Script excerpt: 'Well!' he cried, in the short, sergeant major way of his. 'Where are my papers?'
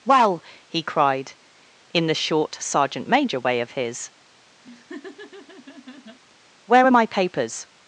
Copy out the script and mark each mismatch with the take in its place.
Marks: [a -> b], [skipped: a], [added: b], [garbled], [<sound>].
'Well!' he cried, in the short, sergeant major way of his. [laugh] 'Where are my papers?'